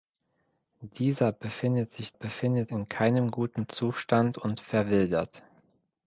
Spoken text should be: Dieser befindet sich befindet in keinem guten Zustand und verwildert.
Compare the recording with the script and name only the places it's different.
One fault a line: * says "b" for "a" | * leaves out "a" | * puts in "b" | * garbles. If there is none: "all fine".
all fine